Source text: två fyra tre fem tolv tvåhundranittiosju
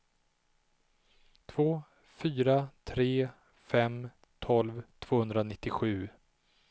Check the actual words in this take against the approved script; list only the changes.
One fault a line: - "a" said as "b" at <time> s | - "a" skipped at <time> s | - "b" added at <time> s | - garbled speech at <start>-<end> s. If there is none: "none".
none